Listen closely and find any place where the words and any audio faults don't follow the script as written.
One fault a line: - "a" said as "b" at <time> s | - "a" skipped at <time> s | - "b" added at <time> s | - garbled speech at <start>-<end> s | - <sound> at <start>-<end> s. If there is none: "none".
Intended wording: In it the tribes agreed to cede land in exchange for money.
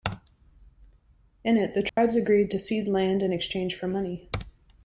- dropout at 1.9-2.0 s